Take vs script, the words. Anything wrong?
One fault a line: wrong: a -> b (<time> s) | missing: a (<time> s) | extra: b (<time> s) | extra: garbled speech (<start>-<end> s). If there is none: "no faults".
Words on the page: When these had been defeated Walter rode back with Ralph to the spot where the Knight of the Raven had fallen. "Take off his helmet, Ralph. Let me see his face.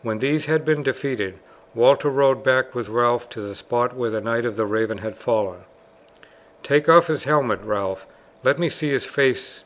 no faults